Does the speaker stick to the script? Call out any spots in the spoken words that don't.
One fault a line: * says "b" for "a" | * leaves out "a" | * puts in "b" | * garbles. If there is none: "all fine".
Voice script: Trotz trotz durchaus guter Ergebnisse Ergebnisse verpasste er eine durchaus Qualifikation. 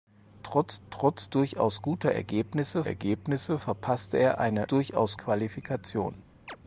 all fine